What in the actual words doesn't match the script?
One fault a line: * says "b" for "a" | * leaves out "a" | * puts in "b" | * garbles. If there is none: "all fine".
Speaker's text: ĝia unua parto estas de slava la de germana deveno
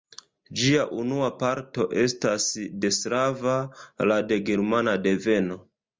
all fine